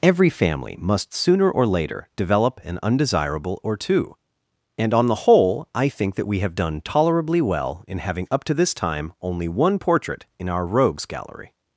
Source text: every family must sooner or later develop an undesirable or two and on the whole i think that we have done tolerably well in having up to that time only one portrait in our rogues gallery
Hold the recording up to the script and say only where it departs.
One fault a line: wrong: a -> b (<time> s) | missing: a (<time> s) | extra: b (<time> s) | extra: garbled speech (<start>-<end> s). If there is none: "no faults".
wrong: that -> this (8.5 s)